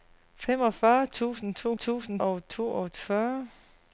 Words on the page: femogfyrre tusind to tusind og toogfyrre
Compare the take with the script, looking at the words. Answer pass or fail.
pass